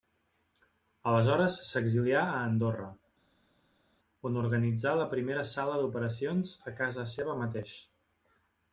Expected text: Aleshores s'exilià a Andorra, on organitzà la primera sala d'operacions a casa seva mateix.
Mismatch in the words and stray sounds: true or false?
false